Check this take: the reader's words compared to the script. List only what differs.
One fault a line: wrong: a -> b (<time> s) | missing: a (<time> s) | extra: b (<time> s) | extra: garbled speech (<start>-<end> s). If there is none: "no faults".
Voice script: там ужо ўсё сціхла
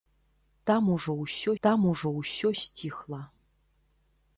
extra: там ужо ўсё (1.7 s)